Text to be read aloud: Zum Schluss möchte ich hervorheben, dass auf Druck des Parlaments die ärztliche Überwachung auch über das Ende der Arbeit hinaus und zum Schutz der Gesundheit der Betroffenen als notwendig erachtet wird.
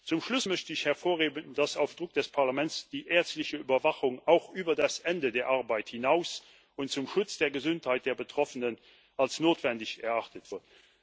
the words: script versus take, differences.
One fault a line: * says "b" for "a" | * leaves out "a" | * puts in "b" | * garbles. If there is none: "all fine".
all fine